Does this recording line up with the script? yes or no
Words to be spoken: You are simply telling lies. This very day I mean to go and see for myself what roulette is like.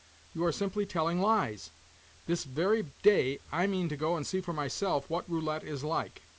yes